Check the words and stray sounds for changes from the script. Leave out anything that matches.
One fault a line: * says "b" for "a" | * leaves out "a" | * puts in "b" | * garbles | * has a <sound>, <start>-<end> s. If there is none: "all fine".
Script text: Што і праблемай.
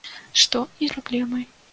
all fine